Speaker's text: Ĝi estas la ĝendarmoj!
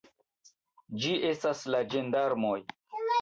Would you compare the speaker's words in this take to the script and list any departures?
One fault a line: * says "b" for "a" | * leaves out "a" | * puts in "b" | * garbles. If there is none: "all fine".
all fine